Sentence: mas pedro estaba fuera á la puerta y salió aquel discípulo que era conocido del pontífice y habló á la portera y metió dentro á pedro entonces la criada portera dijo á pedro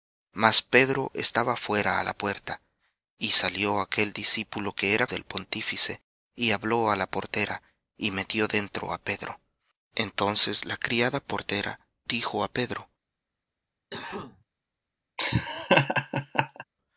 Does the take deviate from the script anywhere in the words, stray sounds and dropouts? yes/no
yes